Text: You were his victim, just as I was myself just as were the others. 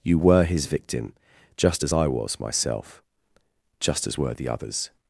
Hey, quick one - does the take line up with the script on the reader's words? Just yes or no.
yes